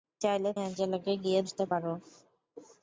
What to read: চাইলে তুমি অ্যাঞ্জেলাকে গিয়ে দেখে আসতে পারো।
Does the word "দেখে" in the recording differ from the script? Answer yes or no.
yes